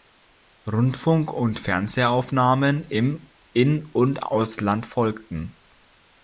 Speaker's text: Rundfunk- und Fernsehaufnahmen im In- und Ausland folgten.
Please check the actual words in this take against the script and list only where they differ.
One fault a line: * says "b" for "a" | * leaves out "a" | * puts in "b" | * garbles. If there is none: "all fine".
all fine